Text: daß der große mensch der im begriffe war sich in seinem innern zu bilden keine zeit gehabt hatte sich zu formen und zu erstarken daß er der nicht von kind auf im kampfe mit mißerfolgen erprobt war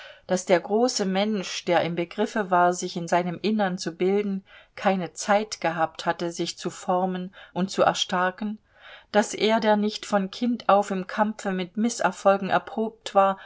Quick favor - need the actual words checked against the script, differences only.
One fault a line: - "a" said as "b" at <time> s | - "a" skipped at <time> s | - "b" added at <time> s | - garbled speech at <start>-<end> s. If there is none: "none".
none